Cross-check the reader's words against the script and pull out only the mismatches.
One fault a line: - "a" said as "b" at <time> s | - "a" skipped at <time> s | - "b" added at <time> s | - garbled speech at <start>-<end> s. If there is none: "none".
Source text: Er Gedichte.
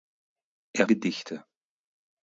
none